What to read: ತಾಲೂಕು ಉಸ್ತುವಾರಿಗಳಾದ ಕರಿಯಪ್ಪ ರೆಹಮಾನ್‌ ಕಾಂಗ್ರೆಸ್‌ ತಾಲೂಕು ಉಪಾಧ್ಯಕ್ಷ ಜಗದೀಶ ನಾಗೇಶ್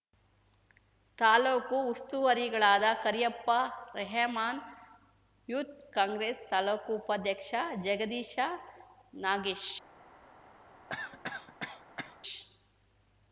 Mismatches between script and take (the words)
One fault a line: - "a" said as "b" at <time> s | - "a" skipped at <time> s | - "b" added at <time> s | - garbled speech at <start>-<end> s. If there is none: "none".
- "ಯೂತ್" added at 5.5 s